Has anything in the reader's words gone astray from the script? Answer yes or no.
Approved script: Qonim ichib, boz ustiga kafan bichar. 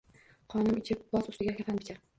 no